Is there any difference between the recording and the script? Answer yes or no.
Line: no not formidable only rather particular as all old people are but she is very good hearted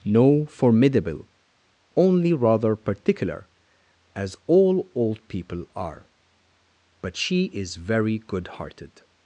yes